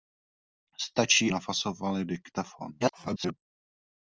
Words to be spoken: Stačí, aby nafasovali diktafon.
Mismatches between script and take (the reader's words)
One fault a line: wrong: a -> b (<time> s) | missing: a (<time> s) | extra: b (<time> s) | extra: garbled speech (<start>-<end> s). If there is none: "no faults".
missing: aby (1.3 s)
extra: garbled speech (2.8-3.3 s)